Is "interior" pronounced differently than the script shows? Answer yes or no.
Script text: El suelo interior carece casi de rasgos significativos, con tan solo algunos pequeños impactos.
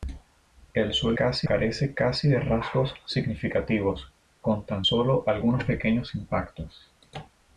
yes